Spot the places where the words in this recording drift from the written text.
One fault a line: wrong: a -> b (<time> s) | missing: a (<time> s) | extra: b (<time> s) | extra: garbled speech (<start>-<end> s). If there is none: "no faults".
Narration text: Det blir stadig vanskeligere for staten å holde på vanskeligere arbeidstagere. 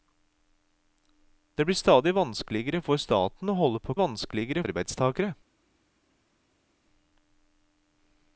no faults